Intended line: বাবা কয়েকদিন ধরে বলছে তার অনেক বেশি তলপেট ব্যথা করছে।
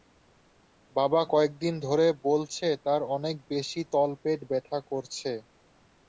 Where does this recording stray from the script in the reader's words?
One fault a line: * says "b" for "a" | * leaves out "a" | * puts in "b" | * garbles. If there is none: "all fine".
all fine